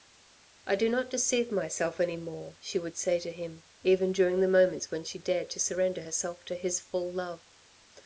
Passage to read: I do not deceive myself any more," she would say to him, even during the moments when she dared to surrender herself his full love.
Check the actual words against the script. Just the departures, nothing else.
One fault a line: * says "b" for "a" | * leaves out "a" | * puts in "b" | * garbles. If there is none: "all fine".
* puts in "to"